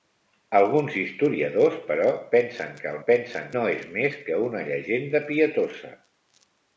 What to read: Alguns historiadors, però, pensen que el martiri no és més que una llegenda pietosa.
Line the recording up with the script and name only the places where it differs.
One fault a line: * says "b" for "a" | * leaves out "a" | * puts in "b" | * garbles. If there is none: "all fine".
* says "pensen" for "martiri"